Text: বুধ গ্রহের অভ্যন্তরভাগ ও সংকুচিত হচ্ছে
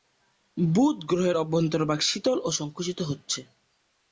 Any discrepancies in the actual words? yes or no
yes